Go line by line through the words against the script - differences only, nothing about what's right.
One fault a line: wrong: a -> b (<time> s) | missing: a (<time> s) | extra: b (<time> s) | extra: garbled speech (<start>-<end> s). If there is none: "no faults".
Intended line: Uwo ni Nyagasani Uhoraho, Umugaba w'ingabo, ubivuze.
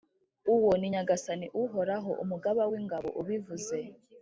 no faults